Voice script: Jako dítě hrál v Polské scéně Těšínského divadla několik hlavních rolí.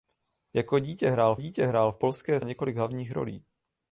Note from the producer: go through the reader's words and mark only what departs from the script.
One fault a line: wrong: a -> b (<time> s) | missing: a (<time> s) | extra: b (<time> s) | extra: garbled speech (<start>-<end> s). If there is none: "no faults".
extra: dítě hrál (1.3 s)
missing: scéně Těšínského divadla (2.4 s)